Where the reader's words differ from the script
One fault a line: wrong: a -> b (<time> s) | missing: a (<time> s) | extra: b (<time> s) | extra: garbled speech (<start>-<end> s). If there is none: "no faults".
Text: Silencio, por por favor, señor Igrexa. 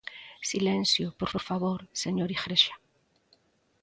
no faults